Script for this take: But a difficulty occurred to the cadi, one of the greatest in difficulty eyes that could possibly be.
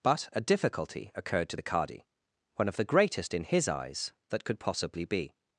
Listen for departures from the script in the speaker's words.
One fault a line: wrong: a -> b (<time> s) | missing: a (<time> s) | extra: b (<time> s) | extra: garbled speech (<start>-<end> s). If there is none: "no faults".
wrong: difficulty -> his (3.4 s)